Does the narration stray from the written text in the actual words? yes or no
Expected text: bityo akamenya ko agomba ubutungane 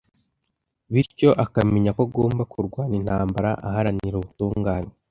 yes